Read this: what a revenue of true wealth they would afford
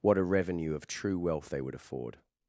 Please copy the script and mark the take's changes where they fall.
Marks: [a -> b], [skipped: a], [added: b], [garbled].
what a revenue of true wealth they would afford